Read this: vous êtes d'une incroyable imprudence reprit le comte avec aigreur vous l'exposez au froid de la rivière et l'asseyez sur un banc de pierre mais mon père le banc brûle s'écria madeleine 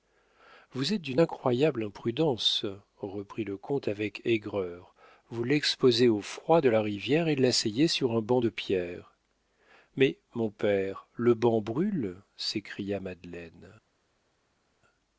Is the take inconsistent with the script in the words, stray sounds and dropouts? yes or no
no